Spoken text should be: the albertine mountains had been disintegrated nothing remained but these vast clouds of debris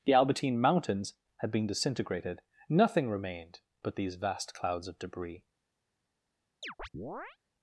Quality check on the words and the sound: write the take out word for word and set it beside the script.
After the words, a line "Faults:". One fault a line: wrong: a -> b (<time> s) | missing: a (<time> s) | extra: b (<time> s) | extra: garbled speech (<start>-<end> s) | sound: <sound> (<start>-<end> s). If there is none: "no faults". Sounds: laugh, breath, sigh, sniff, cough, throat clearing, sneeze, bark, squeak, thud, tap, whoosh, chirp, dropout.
the albertine mountains had been disintegrated nothing remained but these vast clouds of debris
Faults:
sound: chirp (6.6-7.4 s)